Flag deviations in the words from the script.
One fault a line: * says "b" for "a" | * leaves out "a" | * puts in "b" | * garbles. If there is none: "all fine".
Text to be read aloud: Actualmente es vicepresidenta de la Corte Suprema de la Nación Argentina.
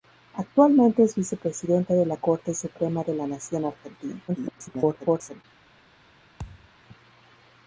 * garbles